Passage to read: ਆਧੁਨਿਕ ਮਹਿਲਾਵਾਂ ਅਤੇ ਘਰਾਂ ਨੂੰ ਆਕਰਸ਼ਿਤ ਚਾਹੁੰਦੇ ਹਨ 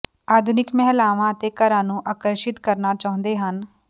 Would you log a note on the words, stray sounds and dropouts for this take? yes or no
yes